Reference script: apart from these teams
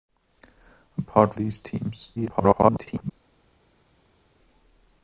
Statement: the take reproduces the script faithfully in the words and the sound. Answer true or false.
false